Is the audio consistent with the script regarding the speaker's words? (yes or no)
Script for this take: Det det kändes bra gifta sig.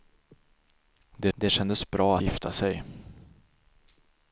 yes